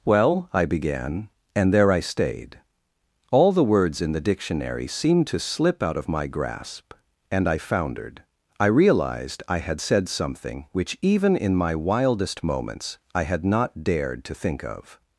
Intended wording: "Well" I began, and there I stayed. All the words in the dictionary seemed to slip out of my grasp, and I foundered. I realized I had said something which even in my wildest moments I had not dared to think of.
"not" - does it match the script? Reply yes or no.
yes